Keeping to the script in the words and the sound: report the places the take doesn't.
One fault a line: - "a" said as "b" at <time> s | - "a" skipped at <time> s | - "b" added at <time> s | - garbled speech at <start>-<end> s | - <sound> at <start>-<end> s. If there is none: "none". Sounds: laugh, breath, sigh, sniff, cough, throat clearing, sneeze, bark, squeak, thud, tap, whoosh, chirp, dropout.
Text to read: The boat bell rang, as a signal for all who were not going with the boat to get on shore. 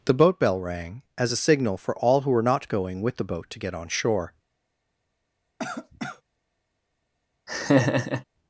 - cough at 5.6-6.2 s
- laugh at 7.5-8.2 s